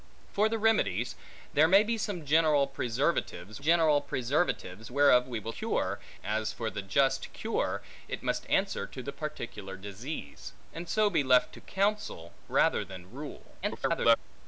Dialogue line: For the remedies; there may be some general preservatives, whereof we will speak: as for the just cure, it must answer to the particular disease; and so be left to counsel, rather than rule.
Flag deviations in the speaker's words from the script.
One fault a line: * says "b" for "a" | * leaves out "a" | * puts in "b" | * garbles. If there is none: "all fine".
* puts in "general preservatives"
* says "cure" for "speak"
* garbles